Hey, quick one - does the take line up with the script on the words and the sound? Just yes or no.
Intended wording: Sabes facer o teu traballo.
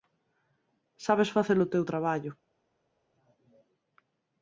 yes